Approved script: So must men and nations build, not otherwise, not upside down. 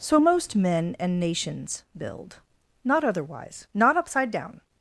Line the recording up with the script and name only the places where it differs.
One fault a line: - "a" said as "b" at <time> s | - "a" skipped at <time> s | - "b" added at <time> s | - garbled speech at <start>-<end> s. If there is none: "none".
- "must" said as "most" at 0.2 s